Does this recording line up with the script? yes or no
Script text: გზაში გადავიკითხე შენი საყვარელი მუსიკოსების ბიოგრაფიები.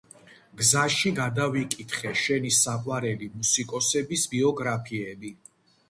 yes